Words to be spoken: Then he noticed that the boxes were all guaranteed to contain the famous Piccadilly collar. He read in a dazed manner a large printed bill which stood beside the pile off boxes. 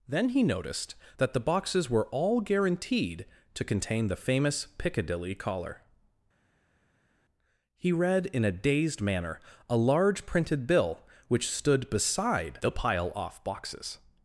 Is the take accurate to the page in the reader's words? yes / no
yes